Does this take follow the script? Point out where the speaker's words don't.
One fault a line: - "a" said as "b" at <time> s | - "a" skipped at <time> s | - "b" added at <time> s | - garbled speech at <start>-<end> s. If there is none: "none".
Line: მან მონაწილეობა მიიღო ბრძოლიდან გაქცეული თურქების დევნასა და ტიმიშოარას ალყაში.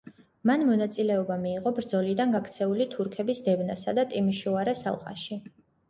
none